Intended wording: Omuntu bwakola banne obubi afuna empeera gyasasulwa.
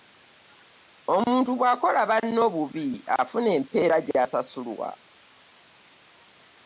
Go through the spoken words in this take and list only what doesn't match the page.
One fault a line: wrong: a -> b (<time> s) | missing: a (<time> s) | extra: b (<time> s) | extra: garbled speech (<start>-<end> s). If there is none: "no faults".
no faults